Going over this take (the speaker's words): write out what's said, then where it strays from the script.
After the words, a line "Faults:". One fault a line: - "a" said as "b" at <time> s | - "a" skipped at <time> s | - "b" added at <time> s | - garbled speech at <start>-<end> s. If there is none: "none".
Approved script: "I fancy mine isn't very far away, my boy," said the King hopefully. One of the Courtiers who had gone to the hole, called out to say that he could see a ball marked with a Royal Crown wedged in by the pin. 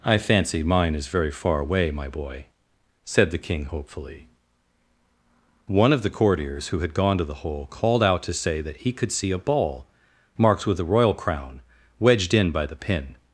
"I fancy mine is very far away, my boy," said the King hopefully. One of the Courtiers who had gone to the hole, called out to say that he could see a ball marked with a Royal Crown wedged in by the pin.
Faults:
- "isn't" said as "is" at 0.9 s